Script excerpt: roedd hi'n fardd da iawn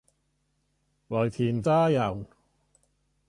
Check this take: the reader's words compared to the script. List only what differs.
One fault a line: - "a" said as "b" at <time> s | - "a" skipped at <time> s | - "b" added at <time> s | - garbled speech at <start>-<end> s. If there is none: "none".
- "fardd" skipped at 1.6 s